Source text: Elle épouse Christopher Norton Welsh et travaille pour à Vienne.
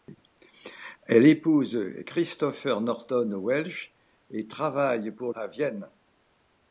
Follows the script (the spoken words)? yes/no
yes